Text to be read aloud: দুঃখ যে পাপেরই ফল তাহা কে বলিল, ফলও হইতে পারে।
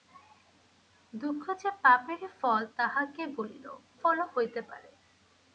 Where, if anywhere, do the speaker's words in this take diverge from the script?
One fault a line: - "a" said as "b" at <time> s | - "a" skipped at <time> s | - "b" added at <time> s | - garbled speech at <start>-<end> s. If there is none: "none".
none